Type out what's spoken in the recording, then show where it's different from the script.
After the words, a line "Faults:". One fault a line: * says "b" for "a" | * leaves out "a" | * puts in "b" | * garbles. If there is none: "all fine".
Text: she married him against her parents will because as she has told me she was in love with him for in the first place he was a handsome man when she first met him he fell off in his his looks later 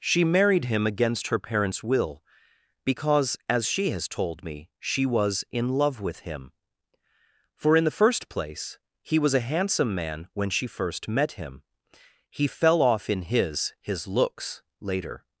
she married him against her parents will because as she has told me she was in love with him for in the first place he was a handsome man when she first met him he fell off in his his looks later
Faults:
all fine